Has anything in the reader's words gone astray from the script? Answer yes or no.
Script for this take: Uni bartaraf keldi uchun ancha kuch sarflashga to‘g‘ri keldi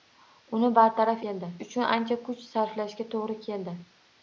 no